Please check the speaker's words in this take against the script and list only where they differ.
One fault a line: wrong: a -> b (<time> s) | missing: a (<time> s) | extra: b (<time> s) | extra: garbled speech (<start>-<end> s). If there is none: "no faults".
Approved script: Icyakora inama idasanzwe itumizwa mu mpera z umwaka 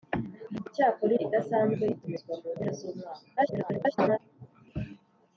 missing: inama (1.1 s)
extra: garbled speech (3.4-4.2 s)